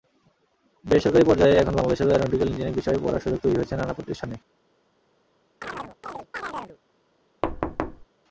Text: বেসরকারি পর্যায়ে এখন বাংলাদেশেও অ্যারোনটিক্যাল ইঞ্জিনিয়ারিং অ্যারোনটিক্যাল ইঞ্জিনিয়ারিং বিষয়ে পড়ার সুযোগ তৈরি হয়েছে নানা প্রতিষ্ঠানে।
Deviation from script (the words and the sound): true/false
true